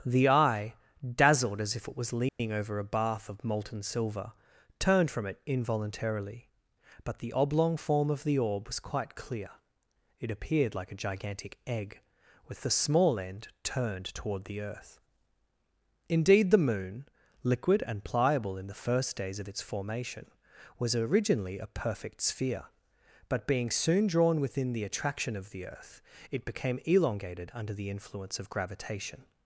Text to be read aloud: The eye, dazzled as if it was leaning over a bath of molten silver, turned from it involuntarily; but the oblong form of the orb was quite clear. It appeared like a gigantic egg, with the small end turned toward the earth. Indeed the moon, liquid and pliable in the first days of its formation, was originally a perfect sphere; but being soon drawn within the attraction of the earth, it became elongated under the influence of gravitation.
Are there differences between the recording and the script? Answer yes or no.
no